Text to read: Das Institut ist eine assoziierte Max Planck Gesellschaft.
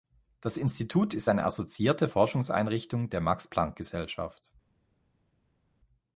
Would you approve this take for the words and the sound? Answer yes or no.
no